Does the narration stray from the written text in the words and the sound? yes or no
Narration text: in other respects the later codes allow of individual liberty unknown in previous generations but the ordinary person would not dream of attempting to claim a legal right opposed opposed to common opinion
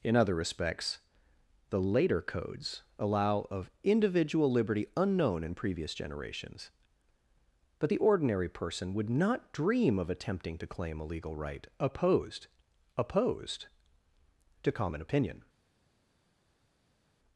no